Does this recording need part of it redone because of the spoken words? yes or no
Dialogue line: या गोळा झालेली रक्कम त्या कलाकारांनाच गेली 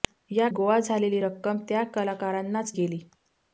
no